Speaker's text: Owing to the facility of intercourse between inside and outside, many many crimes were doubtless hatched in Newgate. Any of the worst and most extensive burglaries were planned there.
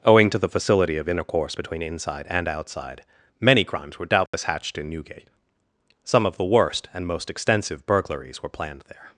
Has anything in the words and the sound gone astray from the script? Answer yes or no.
yes